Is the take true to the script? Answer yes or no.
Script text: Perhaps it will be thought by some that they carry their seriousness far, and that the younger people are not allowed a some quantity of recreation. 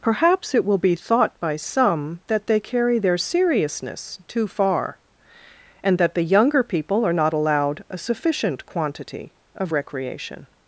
no